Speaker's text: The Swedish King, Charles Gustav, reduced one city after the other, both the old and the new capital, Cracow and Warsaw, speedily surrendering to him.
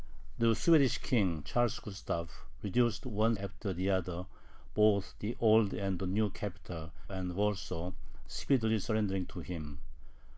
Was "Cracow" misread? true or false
true